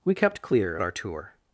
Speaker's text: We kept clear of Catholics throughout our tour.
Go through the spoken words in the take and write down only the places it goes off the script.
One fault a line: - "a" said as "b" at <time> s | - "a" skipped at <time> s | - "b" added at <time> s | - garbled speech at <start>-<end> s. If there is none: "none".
- "of Catholics throughout" skipped at 0.8 s